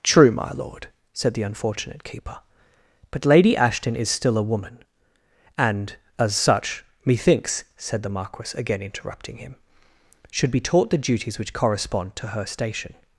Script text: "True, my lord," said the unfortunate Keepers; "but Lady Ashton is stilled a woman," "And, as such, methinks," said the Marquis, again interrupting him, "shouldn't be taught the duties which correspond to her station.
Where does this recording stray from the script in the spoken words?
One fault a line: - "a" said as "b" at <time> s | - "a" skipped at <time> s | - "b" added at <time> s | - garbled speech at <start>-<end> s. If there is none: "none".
- "Keepers" said as "Keeper" at 2.0 s
- "stilled" said as "still" at 4.1 s
- "shouldn't" said as "should" at 10.3 s